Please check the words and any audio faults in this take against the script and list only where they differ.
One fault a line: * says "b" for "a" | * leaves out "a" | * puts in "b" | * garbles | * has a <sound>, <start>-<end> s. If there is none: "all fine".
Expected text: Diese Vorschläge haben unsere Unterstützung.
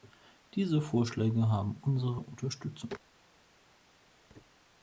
all fine